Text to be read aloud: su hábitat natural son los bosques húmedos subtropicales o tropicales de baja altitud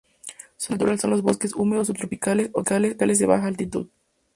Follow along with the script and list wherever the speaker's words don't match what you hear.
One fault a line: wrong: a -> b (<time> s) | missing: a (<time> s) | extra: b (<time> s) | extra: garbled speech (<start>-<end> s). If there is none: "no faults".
missing: hábitat (0.7 s)